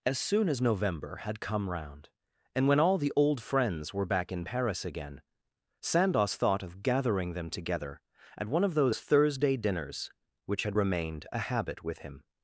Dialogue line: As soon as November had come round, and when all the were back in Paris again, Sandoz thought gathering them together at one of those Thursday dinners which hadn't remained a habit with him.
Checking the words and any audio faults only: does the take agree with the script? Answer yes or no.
no